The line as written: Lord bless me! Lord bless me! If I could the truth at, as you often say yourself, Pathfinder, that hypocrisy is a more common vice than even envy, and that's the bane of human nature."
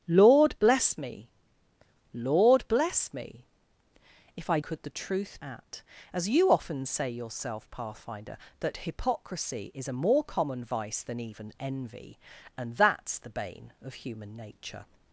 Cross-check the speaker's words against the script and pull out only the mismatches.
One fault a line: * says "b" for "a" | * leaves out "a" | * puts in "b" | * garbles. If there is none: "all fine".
all fine